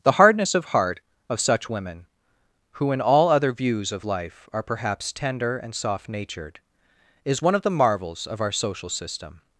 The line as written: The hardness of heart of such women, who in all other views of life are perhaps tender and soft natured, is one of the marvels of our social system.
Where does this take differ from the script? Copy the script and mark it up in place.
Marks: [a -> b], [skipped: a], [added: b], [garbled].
The hardness of heart of such women, who in all other views of life are perhaps tender and soft natured, is one of the marvels of our social system.